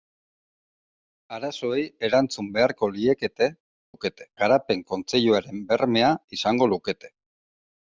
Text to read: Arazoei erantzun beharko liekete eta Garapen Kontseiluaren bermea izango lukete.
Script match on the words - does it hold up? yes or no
no